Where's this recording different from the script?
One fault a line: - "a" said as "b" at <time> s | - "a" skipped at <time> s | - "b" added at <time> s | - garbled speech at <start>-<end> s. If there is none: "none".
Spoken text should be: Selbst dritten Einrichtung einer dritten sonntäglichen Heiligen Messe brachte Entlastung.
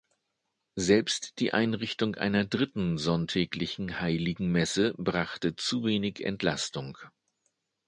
- "dritten" said as "die" at 1.4 s
- "zu wenig" added at 5.5 s